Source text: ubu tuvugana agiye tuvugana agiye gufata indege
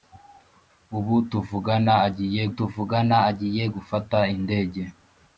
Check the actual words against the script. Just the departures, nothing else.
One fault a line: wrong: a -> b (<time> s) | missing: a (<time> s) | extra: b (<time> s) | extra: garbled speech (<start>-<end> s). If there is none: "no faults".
no faults